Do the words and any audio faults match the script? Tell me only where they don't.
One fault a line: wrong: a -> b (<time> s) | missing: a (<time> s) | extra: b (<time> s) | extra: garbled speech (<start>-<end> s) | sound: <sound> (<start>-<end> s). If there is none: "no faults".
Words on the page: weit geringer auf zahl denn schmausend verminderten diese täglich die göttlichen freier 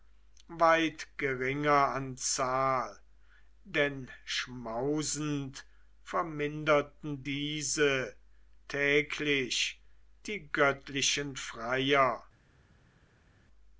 wrong: auf -> an (1.9 s)